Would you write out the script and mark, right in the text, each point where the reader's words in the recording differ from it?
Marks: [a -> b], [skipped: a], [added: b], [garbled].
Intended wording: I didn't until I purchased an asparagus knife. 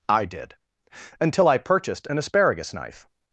I [didn't -> did] until I purchased an asparagus knife.